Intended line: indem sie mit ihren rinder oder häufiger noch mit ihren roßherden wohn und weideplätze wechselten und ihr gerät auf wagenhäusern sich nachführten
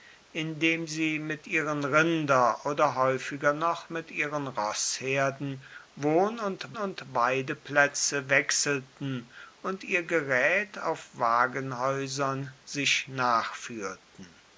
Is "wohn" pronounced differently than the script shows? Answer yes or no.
no